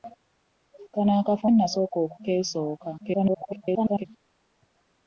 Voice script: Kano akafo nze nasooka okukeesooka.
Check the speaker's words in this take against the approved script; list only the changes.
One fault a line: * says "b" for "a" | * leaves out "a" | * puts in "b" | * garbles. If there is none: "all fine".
* leaves out "nze"
* garbles